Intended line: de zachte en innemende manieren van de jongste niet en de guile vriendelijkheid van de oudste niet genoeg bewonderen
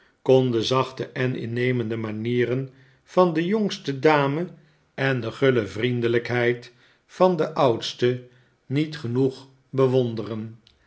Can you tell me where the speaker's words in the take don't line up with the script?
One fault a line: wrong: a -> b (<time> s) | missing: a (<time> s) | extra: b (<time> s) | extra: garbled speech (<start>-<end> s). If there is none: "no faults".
wrong: niet -> dame (4.0 s)